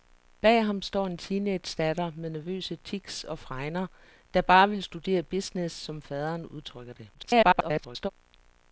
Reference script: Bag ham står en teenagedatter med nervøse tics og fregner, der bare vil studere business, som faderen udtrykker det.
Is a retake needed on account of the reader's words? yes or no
yes